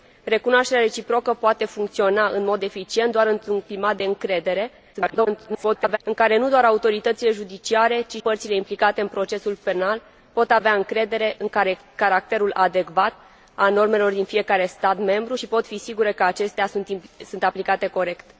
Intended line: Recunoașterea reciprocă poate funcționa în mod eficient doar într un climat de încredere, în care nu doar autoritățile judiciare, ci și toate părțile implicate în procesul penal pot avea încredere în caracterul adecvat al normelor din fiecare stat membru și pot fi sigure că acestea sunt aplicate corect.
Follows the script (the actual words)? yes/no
no